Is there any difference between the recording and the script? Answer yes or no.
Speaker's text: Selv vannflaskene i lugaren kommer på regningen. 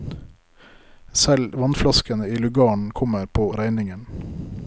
no